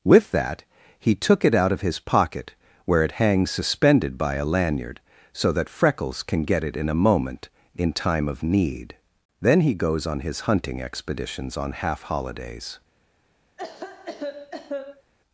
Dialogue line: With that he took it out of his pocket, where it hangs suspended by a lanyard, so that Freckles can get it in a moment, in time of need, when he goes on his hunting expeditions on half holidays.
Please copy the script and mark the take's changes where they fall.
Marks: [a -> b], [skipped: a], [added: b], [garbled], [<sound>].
With that he took it out of his pocket, where it hangs suspended by a lanyard, so that Freckles can get it in a moment, in time of need, [when -> then] he goes on his hunting expeditions on half holidays. [cough]